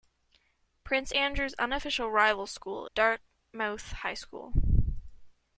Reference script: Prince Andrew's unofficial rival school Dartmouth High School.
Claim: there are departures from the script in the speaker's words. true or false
false